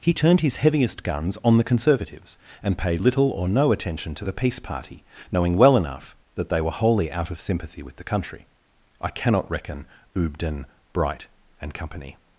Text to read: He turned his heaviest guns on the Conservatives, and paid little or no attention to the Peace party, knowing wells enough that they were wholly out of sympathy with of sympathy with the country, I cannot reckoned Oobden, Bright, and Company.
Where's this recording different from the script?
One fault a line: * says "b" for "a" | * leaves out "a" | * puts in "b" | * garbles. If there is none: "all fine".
* says "well" for "wells"
* leaves out "of sympathy with"
* says "reckon" for "reckoned"